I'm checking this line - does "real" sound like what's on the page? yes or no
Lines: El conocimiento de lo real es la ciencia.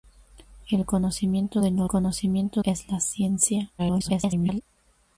no